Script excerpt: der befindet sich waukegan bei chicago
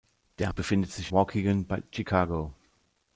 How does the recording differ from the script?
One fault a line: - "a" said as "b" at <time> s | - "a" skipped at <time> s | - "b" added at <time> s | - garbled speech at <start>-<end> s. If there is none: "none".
none